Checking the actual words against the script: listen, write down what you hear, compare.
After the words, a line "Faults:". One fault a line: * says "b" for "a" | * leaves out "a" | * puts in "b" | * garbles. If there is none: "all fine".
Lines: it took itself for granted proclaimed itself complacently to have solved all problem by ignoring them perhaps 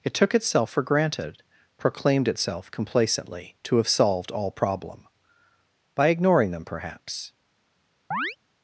it took itself for granted proclaimed itself complacently to have solved all problem by ignoring them perhaps
Faults:
all fine